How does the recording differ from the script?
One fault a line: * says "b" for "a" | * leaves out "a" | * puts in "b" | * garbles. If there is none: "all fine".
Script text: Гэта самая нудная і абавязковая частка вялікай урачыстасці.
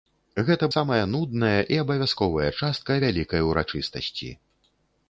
all fine